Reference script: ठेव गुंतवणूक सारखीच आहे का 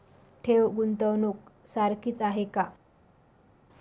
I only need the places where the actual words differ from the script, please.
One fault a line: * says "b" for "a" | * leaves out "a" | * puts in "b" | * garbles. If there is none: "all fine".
all fine